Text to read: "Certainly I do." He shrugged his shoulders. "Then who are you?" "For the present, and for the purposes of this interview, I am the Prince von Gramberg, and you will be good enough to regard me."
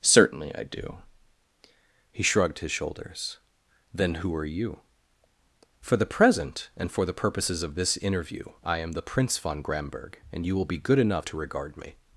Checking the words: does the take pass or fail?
pass